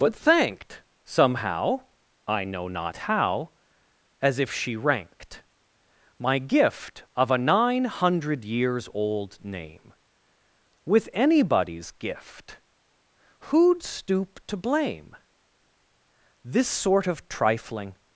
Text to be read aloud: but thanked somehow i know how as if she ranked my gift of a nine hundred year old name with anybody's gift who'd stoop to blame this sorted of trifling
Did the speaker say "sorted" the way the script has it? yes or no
no